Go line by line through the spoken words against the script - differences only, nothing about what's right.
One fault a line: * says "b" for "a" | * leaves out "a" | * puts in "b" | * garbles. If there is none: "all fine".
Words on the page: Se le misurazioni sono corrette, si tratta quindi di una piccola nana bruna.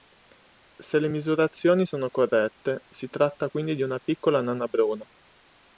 all fine